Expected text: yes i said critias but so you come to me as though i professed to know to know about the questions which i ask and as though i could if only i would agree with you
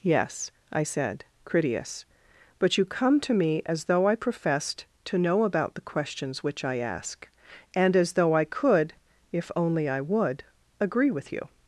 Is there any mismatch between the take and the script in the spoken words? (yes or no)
yes